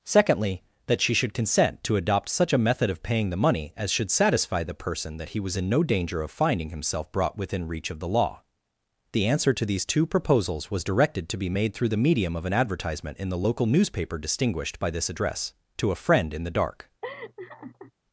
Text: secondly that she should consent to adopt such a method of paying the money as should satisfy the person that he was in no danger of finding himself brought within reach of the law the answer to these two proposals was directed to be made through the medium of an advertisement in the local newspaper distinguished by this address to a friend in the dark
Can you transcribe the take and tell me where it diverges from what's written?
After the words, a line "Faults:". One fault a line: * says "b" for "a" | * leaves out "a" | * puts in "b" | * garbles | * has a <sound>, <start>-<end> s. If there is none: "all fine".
secondly that she should consent to adopt such a method of paying the money as should satisfy the person that he was in no danger of finding himself brought within reach of the law the answer to these two proposals was directed to be made through the medium of an advertisement in the local newspaper distinguished by this address to a friend in the dark
Faults:
* has a laugh, 17.0-17.9 s